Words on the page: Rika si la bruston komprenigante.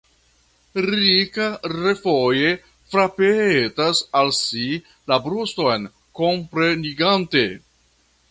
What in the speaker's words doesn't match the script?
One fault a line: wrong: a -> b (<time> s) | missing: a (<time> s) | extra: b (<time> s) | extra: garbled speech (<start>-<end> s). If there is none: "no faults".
extra: refoje frapetas al (1.7 s)